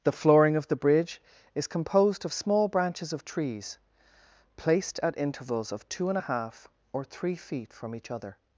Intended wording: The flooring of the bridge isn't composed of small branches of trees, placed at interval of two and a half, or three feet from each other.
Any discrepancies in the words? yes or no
yes